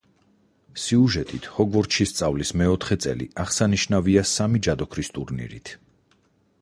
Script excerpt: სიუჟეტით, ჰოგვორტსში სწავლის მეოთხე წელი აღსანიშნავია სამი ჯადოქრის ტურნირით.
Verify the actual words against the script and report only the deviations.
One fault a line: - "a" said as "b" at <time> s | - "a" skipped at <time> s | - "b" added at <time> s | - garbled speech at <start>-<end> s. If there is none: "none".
none